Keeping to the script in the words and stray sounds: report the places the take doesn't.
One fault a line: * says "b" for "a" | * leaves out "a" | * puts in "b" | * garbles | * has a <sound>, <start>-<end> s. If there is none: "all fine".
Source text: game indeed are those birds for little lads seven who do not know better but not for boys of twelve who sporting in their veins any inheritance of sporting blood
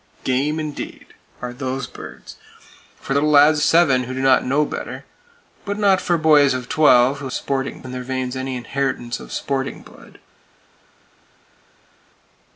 all fine